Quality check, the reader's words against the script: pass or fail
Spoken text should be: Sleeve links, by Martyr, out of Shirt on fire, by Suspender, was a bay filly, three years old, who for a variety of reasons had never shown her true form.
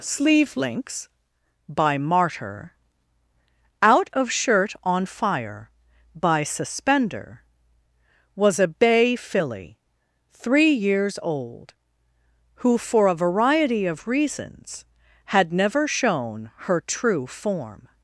pass